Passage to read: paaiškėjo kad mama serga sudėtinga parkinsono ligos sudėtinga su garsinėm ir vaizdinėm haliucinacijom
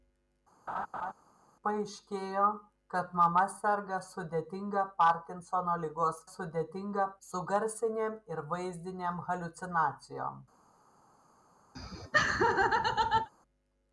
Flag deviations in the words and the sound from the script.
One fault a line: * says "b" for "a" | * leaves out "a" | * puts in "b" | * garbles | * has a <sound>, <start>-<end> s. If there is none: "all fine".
* has a laugh, 0.7-1.1 s
* has a laugh, 11.7-13.3 s